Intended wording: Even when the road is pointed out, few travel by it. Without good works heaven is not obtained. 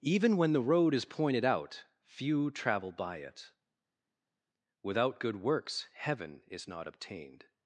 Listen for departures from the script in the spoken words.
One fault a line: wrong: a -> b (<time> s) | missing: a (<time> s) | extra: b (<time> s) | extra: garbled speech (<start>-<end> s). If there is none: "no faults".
no faults